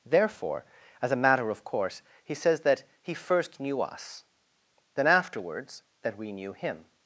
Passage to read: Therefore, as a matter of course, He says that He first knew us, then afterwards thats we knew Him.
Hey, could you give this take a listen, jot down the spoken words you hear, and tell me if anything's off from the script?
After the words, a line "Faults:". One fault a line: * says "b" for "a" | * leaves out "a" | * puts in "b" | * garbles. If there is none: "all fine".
Therefore, as a matter of course, He says that He first knew us, then afterwards that we knew Him.
Faults:
* says "that" for "thats"